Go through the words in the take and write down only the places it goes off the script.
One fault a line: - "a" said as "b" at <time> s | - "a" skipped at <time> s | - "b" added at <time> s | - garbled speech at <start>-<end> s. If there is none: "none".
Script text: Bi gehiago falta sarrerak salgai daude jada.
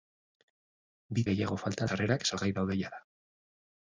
none